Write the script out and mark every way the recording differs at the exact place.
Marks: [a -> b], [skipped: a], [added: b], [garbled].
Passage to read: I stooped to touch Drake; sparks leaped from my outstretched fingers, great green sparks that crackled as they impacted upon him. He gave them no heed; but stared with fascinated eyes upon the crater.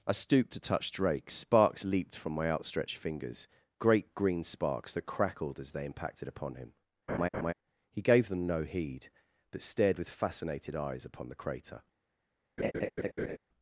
I stooped to touch Drake; sparks leaped from my outstretched fingers, great green sparks that crackled as they impacted upon him. He gave them no heed; but stared with fascinated eyes upon the crater.